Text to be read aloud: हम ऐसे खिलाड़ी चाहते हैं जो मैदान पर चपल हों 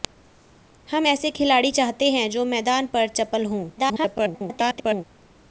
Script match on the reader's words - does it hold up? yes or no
no